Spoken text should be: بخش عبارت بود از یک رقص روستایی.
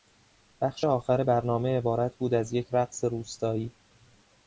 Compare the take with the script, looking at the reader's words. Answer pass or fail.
fail